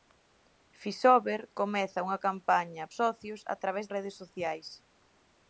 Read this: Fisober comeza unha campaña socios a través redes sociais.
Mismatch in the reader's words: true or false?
false